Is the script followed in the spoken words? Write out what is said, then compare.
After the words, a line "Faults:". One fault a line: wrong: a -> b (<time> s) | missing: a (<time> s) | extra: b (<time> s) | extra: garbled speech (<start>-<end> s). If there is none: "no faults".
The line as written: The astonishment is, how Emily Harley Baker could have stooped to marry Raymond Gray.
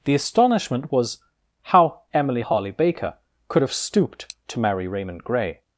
The astonishment was, how Emily Harley Baker could have stooped to marry Raymond Gray.
Faults:
wrong: is -> was (0.9 s)